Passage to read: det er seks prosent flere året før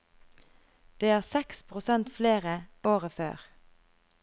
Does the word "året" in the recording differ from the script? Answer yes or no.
no